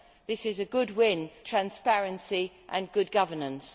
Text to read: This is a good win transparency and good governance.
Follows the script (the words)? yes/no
yes